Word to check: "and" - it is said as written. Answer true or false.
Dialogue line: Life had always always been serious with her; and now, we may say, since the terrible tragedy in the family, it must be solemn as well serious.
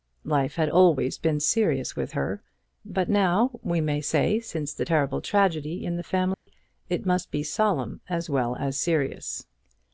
false